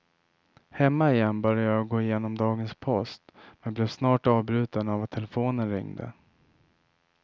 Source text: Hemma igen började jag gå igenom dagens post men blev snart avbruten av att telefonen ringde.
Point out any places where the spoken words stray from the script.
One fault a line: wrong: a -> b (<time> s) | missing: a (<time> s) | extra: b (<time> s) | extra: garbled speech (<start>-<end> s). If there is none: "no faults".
no faults